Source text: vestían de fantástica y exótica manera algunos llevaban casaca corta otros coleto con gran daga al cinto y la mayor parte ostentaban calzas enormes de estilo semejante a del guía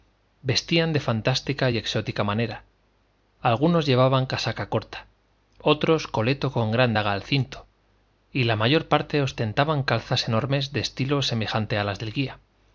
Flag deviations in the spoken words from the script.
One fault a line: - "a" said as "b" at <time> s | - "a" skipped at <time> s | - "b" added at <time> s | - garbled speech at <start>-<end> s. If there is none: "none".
- "las" added at 11.8 s